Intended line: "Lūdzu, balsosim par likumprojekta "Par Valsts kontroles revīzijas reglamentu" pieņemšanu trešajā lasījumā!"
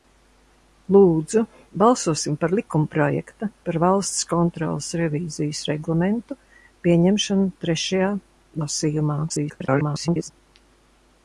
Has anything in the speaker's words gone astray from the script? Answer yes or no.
yes